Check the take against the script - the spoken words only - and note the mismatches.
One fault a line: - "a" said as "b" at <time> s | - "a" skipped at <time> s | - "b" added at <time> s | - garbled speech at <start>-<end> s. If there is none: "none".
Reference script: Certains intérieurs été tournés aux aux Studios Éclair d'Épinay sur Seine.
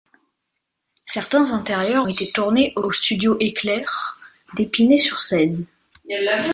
none